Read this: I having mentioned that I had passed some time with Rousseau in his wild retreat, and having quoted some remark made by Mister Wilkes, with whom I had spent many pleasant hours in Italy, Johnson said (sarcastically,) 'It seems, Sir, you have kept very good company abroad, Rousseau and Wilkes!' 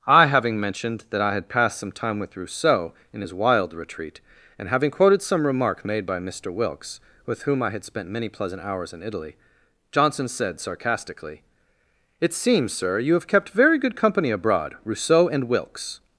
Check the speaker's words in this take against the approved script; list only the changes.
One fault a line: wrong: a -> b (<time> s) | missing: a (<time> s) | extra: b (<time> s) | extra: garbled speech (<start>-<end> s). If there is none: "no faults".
no faults